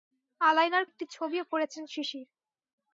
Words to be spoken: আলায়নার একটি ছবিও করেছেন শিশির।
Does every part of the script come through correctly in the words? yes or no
yes